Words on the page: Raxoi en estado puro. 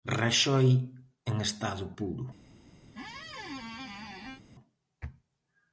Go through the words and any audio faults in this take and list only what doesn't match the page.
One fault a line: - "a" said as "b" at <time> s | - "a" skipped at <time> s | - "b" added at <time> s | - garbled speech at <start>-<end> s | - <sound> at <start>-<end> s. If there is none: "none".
- squeak at 2.9-4.4 s